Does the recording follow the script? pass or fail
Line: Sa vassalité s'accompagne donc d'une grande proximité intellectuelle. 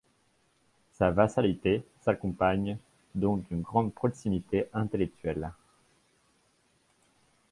pass